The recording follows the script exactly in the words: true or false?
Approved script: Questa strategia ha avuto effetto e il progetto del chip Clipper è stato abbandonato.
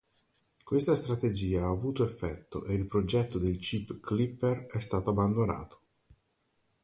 true